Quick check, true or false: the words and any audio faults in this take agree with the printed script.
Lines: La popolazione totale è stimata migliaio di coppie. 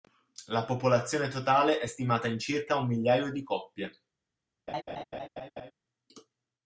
false